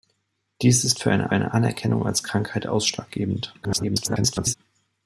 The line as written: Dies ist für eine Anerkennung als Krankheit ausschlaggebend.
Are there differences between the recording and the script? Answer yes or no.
yes